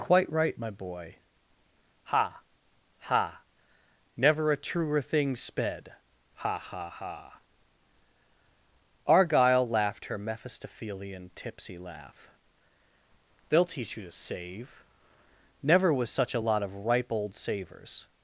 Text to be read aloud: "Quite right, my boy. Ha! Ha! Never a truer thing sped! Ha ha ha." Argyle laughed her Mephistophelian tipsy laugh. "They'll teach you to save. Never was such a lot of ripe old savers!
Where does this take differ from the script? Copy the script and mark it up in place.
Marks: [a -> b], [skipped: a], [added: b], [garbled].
"Quite right, my boy. Ha! Ha! Never a truer thing sped! Ha ha ha." Argyle laughed her Mephistophelian tipsy laugh. "They'll teach you to save. Never was such a lot of ripe old savers!